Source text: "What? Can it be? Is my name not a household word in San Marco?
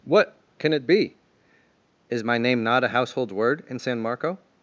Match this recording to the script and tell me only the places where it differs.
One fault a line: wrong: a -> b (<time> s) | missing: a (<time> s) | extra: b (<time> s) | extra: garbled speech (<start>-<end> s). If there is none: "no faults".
no faults